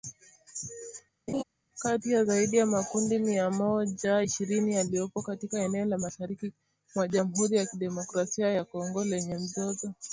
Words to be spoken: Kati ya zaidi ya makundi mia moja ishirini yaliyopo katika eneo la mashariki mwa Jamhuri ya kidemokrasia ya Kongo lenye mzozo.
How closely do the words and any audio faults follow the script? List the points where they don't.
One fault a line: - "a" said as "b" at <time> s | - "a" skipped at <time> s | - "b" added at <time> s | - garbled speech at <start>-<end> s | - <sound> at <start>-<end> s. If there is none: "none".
- laugh at 1.3-1.4 s